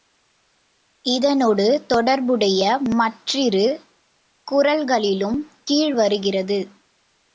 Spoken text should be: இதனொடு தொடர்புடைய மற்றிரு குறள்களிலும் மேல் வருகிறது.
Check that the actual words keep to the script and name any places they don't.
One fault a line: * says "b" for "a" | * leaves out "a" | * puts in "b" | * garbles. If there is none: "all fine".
* says "கீழ்" for "மேல்"